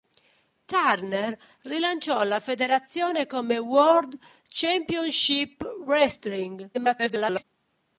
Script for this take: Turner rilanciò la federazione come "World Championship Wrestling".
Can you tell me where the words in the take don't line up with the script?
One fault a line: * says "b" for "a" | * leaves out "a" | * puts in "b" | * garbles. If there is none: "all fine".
* garbles